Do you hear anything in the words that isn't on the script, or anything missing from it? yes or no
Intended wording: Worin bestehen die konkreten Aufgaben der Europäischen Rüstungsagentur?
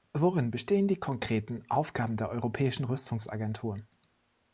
no